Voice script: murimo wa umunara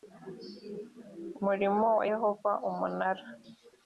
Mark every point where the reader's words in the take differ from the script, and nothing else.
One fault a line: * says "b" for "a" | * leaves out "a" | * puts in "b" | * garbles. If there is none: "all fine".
* puts in "yehova"